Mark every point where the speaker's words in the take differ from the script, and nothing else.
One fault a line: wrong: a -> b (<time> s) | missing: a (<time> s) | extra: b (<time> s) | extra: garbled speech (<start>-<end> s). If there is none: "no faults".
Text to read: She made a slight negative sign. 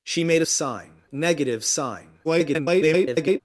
wrong: slight -> sign (0.5 s)
extra: garbled speech (2.2-3.4 s)